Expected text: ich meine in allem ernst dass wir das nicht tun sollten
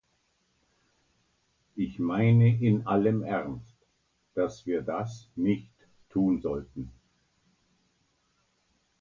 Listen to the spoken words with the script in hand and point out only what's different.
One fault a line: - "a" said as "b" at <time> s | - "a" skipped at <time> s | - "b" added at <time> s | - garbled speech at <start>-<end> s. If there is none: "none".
none